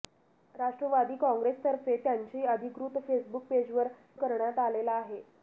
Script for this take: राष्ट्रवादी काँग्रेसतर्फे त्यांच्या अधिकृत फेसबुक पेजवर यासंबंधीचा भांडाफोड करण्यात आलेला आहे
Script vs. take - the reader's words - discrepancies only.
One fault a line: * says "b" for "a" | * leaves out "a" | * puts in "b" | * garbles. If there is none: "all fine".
* leaves out "यासंबंधीचा भांडाफोड"